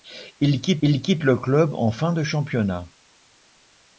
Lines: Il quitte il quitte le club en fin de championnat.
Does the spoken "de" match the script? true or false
true